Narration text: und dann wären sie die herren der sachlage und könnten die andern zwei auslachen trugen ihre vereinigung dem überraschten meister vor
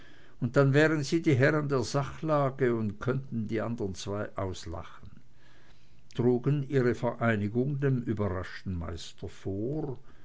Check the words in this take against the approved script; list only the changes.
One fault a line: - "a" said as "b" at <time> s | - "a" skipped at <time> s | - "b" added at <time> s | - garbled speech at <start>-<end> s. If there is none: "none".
none